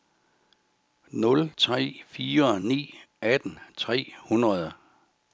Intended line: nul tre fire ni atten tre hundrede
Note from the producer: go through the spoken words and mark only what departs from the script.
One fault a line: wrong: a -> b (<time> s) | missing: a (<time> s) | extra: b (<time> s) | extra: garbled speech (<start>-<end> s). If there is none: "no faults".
no faults